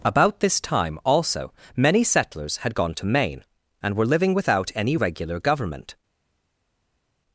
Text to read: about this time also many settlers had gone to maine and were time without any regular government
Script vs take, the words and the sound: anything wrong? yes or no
yes